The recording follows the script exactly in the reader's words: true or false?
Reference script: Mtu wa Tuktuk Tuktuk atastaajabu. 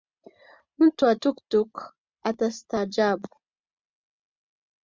false